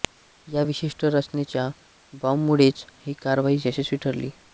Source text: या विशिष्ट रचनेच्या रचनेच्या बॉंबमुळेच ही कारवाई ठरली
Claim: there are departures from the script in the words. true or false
true